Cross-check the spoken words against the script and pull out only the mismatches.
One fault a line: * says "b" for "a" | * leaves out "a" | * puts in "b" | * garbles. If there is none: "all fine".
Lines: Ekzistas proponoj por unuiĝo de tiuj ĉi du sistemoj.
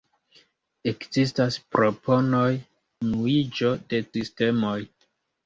* leaves out "por"
* leaves out "tiuj ĉi du"